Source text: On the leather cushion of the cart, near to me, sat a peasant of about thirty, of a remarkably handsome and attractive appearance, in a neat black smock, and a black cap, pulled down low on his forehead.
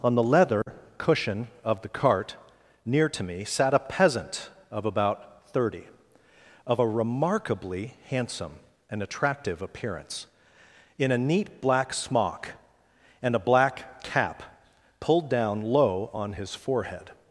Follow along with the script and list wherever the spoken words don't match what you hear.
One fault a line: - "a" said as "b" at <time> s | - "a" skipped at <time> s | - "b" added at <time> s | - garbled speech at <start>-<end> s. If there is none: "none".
none